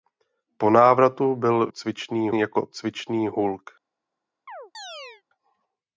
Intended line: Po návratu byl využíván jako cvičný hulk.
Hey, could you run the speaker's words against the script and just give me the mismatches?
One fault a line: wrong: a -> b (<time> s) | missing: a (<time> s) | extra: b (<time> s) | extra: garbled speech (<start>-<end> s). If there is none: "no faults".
wrong: využíván -> cvičný (1.7 s)